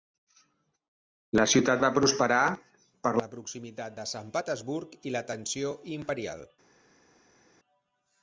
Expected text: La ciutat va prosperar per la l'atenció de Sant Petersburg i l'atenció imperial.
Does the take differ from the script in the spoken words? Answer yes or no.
yes